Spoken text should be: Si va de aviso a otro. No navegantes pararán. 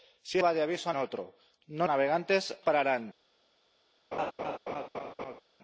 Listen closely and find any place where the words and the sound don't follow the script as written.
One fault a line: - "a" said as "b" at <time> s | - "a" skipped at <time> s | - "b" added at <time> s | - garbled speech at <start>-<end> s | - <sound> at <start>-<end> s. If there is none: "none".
- laugh at 4.1-5.4 s